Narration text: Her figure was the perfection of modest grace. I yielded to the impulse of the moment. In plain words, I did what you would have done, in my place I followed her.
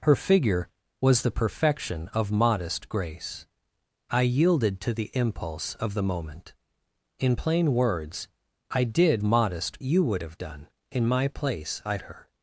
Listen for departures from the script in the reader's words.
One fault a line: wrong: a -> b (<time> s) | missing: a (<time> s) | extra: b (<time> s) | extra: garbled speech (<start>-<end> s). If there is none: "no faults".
wrong: what -> modest (9.2 s)
missing: followed (12.0 s)